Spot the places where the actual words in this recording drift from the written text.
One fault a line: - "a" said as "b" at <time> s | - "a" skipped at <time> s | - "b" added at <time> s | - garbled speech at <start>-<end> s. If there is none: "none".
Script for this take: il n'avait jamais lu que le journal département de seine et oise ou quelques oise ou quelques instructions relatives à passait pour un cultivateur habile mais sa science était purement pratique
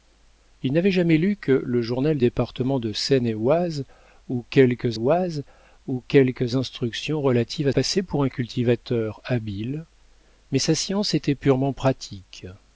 none